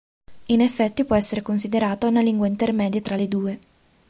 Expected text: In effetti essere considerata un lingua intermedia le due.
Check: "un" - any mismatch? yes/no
yes